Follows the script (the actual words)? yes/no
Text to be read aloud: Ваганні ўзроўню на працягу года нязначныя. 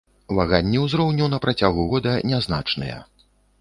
yes